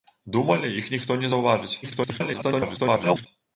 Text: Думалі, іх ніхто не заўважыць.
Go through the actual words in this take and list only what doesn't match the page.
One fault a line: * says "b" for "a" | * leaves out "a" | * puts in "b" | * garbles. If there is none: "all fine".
* garbles